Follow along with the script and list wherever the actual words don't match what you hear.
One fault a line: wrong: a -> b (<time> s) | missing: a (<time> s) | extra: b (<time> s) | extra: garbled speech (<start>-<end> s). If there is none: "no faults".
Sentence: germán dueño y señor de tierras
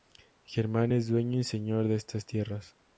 extra: es (0.9 s)
extra: estas (2.0 s)